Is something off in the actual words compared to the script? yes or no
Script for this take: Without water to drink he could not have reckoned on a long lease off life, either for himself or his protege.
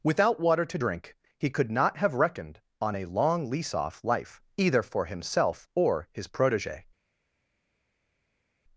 no